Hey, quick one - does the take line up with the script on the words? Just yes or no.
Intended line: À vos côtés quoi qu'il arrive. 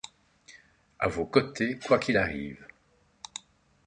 yes